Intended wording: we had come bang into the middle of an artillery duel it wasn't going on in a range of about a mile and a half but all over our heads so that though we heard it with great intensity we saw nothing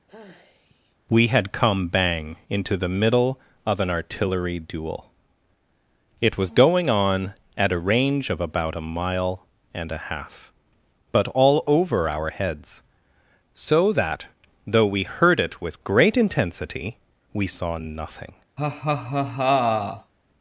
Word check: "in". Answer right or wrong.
wrong